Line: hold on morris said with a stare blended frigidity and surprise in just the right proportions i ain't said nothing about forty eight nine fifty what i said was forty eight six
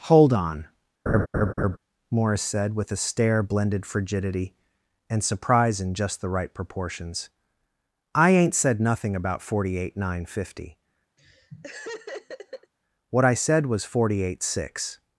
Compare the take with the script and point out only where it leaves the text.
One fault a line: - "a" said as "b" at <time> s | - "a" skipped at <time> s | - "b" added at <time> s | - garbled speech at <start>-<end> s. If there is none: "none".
none